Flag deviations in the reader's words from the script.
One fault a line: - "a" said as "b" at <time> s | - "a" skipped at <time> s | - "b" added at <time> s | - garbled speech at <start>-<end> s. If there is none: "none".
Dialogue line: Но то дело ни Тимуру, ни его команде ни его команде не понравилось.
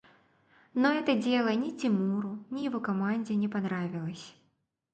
- "то" said as "это" at 0.9 s
- "ни его команде" skipped at 3.3 s